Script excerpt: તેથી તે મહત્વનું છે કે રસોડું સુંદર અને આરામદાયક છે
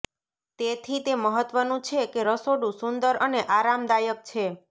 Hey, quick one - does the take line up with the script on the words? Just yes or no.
yes